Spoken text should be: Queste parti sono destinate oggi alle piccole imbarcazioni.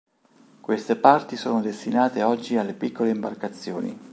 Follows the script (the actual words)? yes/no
yes